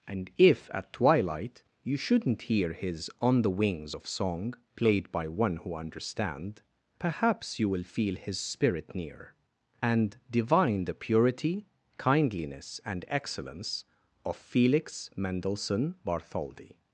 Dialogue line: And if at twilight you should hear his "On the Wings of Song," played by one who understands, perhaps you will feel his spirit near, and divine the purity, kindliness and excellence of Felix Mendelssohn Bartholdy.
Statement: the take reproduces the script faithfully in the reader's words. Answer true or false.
false